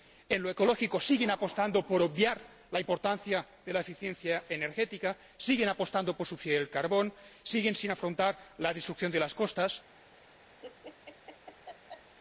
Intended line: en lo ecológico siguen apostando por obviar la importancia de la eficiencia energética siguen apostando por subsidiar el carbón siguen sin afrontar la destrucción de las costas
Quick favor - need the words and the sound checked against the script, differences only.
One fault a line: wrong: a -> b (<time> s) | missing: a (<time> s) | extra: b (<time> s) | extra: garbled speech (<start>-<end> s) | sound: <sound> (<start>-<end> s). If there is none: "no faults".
sound: laugh (10.6-12.2 s)